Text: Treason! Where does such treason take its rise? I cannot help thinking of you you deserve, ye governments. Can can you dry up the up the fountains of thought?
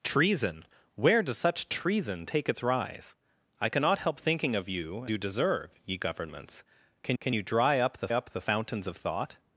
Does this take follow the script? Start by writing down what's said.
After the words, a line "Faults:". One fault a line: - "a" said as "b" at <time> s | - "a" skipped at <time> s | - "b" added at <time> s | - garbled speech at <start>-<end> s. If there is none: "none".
Treason! Where does such treason take its rise? I cannot help thinking of you you deserve, ye governments. Can can you dry up the up the fountains of thought?
Faults:
none